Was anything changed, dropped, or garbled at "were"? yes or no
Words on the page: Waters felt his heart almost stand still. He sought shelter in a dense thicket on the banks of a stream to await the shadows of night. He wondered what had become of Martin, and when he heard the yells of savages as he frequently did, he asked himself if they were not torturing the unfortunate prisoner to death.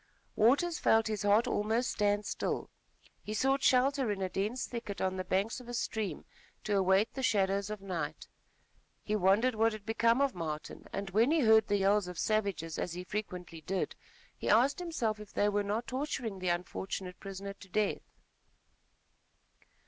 no